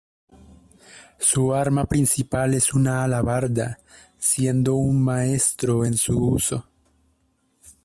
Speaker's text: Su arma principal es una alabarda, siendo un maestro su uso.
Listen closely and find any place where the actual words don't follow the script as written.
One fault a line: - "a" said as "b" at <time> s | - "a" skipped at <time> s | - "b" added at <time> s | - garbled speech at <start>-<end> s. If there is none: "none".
- "en" added at 5.8 s